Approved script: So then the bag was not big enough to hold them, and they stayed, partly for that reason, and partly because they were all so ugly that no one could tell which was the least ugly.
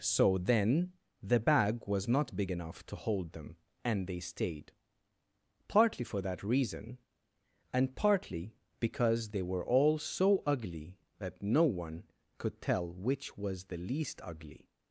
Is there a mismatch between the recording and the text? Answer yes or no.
no